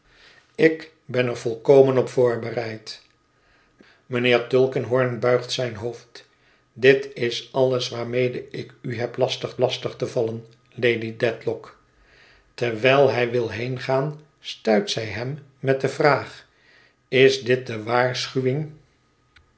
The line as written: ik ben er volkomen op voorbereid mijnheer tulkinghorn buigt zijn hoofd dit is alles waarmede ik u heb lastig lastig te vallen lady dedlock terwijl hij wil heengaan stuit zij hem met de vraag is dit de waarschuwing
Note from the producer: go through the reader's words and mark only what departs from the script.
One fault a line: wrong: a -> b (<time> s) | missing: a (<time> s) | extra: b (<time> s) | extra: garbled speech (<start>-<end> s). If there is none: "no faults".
no faults